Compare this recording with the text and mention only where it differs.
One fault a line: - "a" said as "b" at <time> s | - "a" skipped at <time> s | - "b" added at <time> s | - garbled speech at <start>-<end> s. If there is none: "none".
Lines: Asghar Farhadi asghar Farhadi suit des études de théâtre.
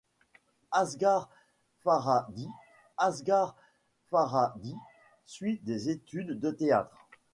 none